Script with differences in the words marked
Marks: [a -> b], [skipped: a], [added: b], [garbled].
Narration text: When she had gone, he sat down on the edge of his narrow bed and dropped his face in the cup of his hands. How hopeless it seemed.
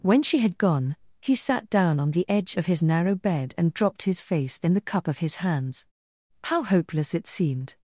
When she had gone, he sat down on the edge of his narrow bed and dropped his face in the cup of his hands. How hopeless it seemed.